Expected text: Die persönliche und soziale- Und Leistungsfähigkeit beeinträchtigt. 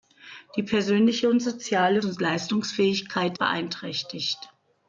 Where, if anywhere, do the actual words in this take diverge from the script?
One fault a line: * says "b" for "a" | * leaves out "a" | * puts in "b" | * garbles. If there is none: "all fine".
all fine